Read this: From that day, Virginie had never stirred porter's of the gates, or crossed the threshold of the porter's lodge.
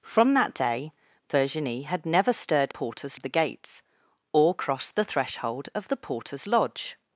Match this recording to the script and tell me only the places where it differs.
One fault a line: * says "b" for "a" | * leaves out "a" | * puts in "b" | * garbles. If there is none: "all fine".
all fine